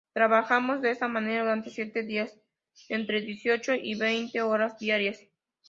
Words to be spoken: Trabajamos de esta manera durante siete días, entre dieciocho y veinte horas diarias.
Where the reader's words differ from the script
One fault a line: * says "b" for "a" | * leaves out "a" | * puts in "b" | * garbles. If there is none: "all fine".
all fine